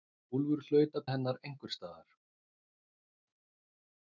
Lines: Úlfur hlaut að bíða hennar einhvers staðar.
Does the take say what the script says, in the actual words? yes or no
no